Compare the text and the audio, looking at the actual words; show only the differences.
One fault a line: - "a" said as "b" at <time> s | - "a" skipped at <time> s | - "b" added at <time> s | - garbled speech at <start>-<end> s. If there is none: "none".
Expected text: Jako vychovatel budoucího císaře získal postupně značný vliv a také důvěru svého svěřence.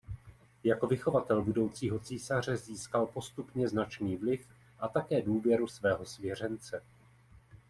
none